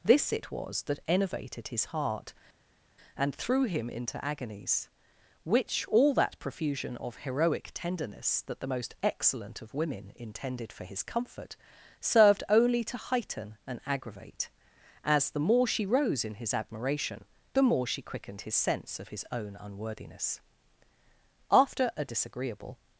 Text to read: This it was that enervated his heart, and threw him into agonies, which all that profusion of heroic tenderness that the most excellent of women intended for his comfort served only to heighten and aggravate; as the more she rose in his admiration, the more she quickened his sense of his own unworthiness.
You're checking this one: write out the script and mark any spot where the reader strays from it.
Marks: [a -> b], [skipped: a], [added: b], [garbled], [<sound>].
This it was that enervated his heart, and threw him into agonies, which all that profusion of heroic tenderness that the most excellent of women intended for his comfort served only to heighten and aggravate; as the more she rose in his admiration, the more she quickened his sense of his own unworthiness. [added: After a disagreeable]